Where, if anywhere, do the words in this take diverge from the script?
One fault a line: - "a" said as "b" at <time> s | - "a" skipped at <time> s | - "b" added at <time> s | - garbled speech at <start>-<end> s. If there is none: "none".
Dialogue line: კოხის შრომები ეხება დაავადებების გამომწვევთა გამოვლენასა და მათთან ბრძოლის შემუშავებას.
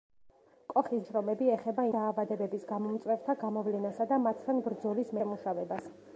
none